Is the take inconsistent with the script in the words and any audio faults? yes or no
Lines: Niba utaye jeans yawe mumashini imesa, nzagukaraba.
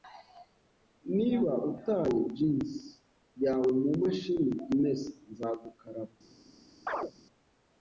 yes